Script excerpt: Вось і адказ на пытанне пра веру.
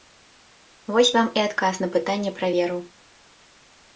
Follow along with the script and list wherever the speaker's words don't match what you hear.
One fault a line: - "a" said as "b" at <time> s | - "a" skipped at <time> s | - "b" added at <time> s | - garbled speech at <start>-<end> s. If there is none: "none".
- "вам" added at 1.2 s